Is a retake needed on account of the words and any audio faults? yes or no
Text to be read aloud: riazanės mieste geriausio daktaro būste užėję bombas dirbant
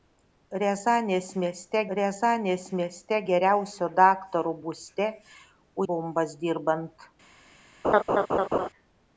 yes